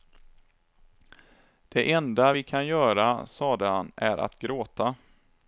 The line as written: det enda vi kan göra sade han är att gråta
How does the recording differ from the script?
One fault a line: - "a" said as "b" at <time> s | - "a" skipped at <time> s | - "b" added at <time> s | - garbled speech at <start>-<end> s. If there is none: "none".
none